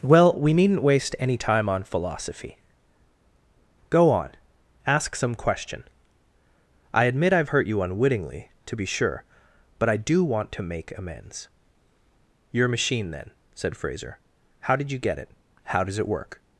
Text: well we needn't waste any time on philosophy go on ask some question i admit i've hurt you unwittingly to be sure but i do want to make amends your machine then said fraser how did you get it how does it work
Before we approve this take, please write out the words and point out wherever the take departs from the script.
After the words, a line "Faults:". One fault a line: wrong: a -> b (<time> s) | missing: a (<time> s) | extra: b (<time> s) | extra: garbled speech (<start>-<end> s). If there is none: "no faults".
well we needn't waste any time on philosophy go on ask some question i admit i've hurt you unwittingly to be sure but i do want to make amends your machine then said fraser how did you get it how does it work
Faults:
no faults